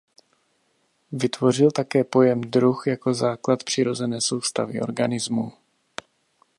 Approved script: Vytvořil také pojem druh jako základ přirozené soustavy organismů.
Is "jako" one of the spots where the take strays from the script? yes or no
no